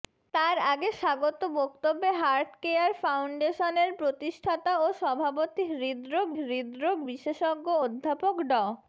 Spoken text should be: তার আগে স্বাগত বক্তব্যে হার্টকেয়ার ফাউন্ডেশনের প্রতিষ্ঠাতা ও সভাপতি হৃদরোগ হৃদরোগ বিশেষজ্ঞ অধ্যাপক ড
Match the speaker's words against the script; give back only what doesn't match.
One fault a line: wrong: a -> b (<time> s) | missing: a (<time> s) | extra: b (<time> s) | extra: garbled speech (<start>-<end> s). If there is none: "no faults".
no faults